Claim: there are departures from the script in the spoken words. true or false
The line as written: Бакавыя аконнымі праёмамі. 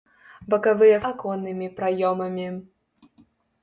false